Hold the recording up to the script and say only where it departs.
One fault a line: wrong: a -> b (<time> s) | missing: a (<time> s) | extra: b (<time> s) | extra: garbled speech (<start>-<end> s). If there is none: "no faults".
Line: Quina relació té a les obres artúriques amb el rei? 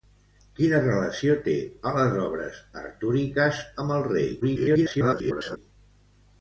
extra: garbled speech (4.4-5.6 s)